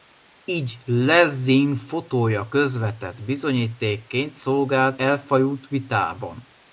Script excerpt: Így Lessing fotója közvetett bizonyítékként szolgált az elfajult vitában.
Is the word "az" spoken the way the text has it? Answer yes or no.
no